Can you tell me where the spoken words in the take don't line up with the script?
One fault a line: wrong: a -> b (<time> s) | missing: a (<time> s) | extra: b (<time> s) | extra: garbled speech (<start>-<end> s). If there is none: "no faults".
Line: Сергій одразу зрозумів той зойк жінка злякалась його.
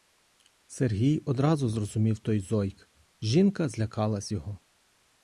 no faults